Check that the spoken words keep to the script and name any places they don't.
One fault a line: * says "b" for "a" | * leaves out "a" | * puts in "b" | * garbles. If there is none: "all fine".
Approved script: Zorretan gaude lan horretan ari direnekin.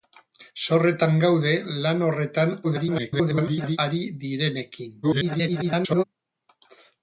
* garbles
* garbles